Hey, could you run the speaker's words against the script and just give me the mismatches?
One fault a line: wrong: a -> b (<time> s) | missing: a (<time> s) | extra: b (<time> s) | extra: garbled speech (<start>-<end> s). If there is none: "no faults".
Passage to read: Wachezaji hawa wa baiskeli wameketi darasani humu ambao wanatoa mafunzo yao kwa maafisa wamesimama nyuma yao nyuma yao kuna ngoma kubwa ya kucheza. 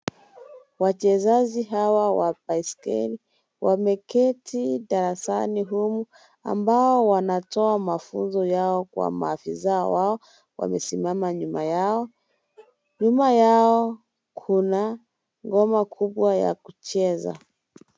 extra: wao (9.9 s)